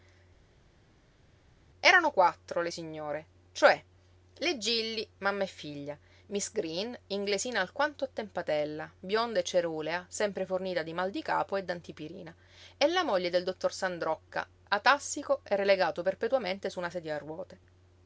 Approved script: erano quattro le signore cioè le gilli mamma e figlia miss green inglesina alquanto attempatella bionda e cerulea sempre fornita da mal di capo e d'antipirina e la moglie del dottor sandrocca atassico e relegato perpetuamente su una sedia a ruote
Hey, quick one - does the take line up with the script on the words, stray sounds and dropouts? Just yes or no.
no